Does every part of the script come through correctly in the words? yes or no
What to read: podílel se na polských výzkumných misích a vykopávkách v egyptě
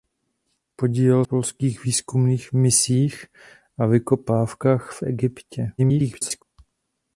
no